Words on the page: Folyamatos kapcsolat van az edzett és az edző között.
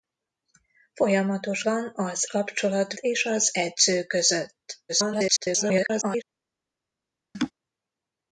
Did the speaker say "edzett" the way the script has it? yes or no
no